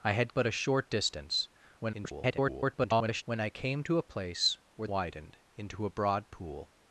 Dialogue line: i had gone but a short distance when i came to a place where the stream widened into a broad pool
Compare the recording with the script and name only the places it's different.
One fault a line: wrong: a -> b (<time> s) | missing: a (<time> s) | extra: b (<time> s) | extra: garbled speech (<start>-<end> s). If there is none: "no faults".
missing: gone (0.3 s)
extra: garbled speech (1.8-3.2 s)
missing: the stream (4.9 s)